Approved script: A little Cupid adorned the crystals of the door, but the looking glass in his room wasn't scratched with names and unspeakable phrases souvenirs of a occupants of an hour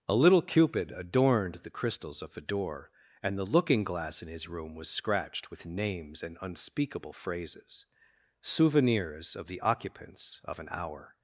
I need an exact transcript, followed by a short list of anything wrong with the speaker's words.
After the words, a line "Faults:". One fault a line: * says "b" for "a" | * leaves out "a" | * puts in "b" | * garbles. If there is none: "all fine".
A little Cupid adorned the crystals of the door, and the looking glass in his room was scratched with names and unspeakable phrases souvenirs of the occupants of an hour
Faults:
* says "and" for "but"
* says "was" for "wasn't"
* says "the" for "a"